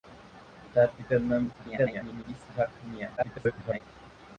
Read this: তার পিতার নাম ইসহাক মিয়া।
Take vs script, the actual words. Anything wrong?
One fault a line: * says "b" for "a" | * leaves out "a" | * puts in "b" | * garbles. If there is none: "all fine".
* garbles
* garbles